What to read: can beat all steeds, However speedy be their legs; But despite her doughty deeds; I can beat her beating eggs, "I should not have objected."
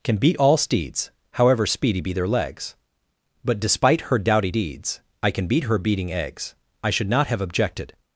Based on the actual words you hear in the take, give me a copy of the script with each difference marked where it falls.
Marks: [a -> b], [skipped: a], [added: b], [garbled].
can beat all steeds, However speedy be their legs; But despite her doughty deeds; I can beat her beating eggs, "I should not have objected."